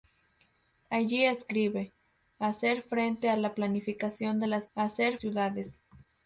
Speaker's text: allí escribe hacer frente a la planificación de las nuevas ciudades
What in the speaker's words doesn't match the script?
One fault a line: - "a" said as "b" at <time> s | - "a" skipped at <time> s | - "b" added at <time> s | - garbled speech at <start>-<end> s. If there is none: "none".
- "nuevas" said as "hacer" at 4.7 s